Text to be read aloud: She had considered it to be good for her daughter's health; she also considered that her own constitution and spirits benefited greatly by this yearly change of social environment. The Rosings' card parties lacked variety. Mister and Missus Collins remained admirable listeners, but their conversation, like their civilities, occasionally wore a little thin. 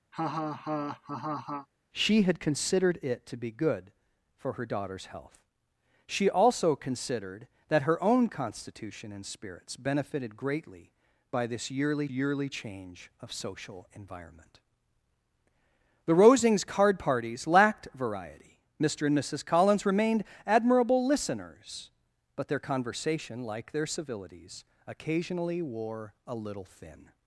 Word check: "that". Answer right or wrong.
right